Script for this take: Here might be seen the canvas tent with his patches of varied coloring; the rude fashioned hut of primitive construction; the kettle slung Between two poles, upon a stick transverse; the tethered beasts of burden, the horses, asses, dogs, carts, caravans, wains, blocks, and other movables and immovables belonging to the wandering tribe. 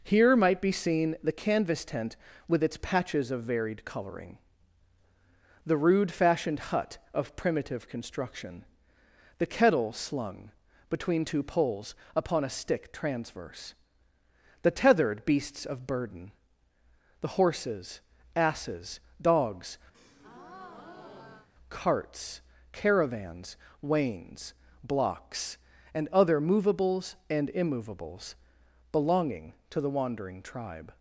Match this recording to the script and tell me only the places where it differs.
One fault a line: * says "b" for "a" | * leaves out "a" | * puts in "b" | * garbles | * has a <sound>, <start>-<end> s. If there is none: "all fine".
* says "its" for "his"
* has a breath, 19.9-21.5 s